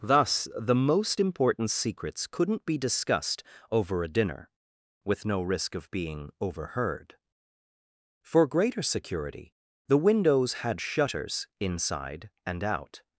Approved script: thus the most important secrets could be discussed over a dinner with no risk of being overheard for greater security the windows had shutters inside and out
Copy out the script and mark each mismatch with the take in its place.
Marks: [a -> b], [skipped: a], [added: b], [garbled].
thus the most important secrets [could -> couldn't] be discussed over a dinner with no risk of being overheard for greater security the windows had shutters inside and out